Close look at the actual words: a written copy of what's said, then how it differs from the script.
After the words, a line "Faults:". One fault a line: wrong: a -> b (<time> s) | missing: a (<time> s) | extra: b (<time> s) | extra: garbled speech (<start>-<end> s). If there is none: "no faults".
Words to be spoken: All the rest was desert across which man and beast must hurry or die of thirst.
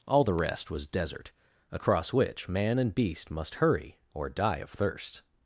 All the rest was desert across which man and beast must hurry or die of thirst.
Faults:
no faults